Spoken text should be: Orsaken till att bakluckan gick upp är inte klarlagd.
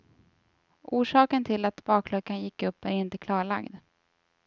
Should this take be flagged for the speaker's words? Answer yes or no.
no